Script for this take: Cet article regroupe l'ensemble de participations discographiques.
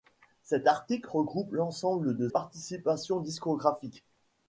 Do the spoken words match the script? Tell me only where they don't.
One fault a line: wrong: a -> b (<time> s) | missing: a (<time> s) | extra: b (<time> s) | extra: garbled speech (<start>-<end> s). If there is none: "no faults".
no faults